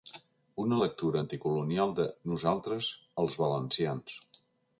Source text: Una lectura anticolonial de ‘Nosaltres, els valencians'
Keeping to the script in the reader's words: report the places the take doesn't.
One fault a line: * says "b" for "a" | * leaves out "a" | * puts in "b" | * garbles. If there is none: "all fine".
all fine